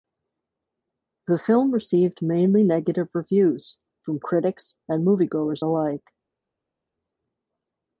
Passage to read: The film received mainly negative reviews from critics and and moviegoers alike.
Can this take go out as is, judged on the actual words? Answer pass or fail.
fail